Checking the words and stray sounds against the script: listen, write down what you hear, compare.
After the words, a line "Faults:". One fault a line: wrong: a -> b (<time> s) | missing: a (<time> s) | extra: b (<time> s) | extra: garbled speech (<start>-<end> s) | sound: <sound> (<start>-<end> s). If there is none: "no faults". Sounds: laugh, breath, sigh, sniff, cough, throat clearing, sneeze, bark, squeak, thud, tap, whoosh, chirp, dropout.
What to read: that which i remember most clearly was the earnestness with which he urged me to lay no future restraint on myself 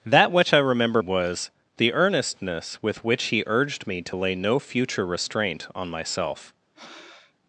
that which i remember was the earnestness with which he urged me to lay no future restraint on myself
Faults:
missing: most clearly (1.0 s)
sound: breath (6.7-7.3 s)